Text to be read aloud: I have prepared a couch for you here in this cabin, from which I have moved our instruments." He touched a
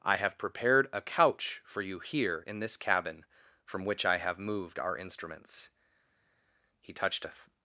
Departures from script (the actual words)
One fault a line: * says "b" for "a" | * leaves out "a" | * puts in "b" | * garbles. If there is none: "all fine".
all fine